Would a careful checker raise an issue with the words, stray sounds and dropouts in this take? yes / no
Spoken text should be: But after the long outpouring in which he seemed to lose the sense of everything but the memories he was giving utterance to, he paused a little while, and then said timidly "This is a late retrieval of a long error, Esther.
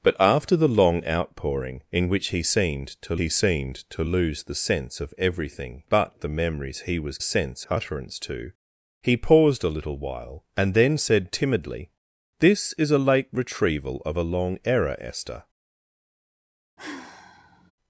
yes